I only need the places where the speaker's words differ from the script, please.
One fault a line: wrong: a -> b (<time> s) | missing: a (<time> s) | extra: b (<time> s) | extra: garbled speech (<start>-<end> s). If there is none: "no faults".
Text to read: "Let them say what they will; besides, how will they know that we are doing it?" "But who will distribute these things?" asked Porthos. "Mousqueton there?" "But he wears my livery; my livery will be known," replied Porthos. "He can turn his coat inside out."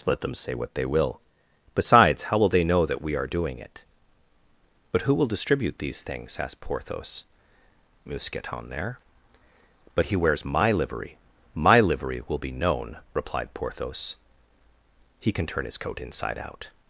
no faults